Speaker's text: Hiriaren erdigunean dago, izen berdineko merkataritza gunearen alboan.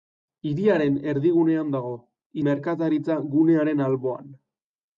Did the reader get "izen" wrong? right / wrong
wrong